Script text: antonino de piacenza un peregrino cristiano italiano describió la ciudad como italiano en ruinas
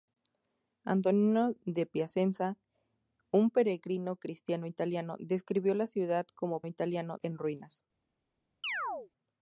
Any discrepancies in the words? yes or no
no